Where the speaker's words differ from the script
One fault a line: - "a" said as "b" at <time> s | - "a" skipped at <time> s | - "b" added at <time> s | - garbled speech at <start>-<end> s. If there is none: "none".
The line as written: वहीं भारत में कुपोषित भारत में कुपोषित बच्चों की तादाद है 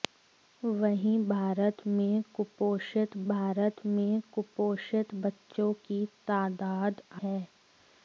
none